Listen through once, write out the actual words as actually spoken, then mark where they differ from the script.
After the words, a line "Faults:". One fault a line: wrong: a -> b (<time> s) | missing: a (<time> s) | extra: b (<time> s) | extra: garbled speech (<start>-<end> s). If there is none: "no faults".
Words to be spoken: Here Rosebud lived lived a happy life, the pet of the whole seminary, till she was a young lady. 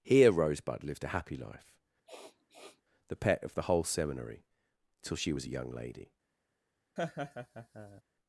Here Rosebud lived a happy life, the pet of the whole seminary, till she was a young lady.
Faults:
missing: lived (1.0 s)